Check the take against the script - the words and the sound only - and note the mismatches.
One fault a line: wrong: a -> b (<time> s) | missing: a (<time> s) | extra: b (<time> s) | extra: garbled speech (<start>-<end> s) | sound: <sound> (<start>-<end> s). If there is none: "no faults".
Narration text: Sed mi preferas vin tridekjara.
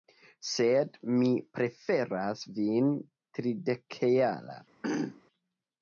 sound: throat clearing (4.8-5.2 s)